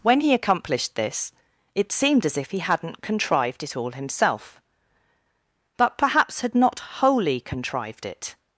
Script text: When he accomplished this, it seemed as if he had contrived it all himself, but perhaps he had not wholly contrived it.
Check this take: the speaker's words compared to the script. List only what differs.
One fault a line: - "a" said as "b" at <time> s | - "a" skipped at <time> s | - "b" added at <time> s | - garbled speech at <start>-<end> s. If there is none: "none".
- "had" said as "hadn't" at 2.6 s
- "he" skipped at 6.4 s